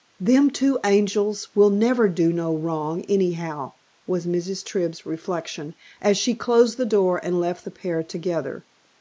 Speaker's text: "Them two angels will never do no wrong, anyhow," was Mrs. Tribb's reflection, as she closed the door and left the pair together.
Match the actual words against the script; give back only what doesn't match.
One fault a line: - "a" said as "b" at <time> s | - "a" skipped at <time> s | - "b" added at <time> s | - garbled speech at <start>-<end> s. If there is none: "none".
none